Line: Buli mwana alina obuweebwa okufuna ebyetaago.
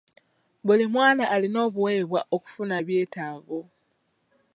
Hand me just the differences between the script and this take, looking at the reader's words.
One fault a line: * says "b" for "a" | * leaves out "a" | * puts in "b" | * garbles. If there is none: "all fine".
all fine